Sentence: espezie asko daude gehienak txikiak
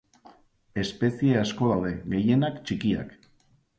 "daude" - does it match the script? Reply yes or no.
yes